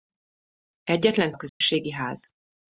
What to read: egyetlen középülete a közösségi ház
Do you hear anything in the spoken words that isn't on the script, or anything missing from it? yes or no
yes